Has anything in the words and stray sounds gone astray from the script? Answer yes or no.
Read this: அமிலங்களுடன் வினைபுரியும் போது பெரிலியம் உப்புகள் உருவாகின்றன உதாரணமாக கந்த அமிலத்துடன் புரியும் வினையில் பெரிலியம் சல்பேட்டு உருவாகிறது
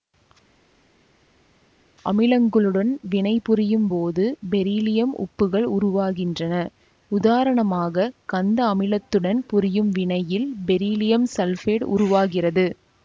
no